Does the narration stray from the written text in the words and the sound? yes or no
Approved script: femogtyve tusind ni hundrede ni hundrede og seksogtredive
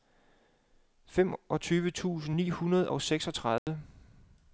yes